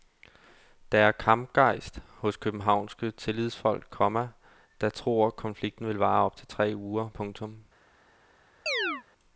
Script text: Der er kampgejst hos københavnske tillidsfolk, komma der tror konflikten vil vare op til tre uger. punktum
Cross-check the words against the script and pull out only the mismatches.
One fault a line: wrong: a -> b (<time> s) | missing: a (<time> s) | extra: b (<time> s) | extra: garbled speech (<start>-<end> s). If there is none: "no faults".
no faults